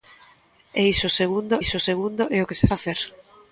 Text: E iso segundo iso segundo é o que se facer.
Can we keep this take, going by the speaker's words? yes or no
yes